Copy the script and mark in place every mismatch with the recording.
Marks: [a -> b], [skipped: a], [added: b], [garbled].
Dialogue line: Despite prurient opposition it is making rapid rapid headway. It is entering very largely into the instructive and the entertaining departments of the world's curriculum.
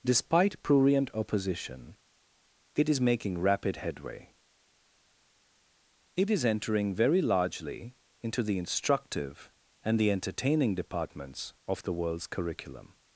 Despite prurient opposition it is making rapid [skipped: rapid] headway. It is entering very largely into the instructive and the entertaining departments of the world's curriculum.